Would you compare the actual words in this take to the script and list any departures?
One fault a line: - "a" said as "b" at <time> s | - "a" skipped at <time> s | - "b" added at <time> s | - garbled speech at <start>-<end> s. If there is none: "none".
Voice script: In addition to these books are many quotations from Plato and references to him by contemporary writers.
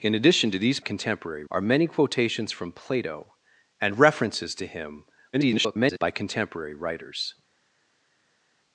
- "books" said as "contemporary" at 0.8 s
- garbled speech at 5.3-6.0 s